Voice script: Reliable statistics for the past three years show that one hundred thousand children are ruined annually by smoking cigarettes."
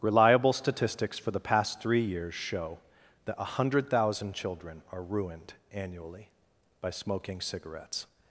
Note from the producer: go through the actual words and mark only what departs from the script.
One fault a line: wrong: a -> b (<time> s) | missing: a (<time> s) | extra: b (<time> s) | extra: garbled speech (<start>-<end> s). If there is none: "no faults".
no faults